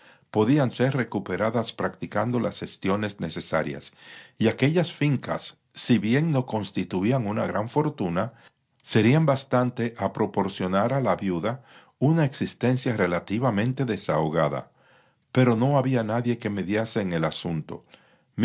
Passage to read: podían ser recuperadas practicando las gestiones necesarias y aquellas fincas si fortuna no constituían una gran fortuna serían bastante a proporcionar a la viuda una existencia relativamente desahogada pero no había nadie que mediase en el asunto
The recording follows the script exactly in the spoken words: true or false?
false